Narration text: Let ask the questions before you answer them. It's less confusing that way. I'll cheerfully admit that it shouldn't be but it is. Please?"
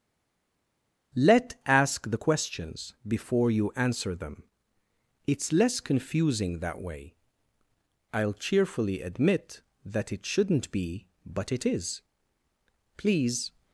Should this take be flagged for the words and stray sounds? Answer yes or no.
no